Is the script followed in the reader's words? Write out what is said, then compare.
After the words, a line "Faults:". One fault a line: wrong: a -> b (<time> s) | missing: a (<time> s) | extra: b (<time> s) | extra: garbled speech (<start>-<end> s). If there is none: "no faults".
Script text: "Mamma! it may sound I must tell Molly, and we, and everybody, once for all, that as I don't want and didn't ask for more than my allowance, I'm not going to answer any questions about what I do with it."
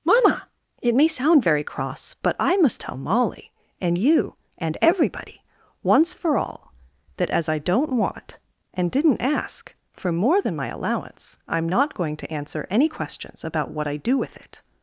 "Mamma! it may sound very cross, but I must tell Molly, and you, and everybody, once for all, that as I don't want and didn't ask for more than my allowance, I'm not going to answer any questions about what I do with it."
Faults:
extra: very cross but (1.4 s)
wrong: we -> you (4.0 s)